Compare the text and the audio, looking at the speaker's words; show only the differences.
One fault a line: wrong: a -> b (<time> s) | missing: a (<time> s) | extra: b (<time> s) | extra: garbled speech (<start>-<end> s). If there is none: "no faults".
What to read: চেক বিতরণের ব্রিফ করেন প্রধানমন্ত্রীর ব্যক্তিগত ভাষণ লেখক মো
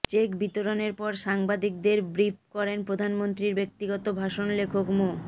extra: পর সাংবাদিকদের (0.9 s)